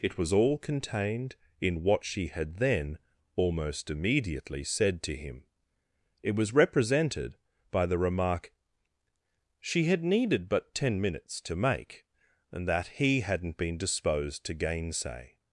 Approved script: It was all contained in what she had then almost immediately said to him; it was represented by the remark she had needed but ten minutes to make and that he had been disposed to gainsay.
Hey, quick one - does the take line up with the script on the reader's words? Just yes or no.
no